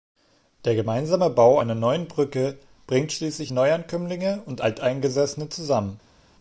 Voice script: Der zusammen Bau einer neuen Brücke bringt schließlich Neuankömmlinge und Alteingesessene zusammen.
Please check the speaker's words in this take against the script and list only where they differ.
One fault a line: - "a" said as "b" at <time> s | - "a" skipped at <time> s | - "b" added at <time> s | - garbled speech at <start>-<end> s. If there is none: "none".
- "zusammen" said as "gemeinsame" at 0.8 s